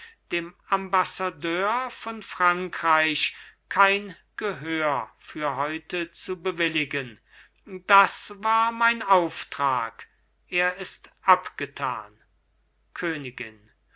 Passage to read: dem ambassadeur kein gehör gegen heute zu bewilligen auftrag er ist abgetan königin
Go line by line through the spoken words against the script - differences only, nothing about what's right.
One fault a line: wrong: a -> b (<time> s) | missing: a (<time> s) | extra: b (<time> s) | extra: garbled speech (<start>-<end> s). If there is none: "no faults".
extra: von frankreich (1.9 s)
wrong: gegen -> für (5.2 s)
extra: das war mein (7.7 s)